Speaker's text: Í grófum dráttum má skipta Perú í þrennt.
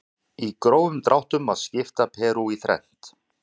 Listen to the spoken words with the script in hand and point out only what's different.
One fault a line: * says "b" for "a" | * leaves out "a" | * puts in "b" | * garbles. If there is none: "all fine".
all fine